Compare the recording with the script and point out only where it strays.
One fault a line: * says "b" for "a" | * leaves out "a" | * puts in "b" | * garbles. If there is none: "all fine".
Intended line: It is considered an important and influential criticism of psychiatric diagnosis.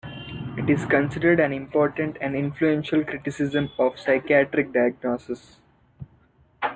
all fine